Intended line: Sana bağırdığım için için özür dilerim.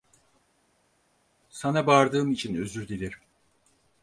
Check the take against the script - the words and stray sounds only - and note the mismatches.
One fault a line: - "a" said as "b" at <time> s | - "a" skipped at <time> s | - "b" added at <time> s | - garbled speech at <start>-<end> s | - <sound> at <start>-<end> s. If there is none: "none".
- "için" skipped at 2.6 s